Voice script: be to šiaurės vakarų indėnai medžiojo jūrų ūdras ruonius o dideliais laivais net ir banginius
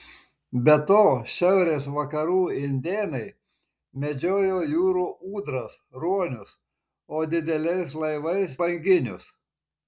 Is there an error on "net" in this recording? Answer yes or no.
yes